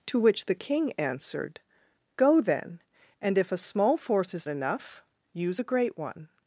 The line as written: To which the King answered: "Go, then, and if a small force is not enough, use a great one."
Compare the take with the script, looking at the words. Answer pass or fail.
fail